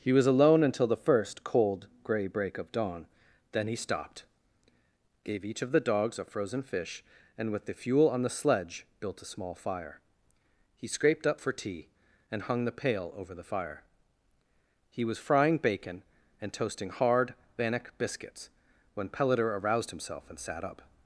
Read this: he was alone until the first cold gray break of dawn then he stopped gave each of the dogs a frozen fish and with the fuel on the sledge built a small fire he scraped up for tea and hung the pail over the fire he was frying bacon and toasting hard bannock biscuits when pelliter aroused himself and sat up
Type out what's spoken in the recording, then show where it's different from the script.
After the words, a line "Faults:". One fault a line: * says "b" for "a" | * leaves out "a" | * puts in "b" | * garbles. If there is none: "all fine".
he was alone until the first cold gray break of dawn then he stopped gave each of the dogs a frozen fish and with the fuel on the sledge built a small fire he scraped up for tea and hung the pail over the fire he was frying bacon and toasting hard bannock biscuits when pelliter aroused himself and sat up
Faults:
all fine